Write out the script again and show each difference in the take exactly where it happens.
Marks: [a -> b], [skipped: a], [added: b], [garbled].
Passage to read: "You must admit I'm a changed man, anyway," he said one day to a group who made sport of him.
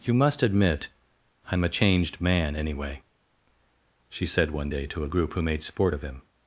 "You must admit I'm a changed man, anyway," [he -> she] said one day to a group who made sport of him.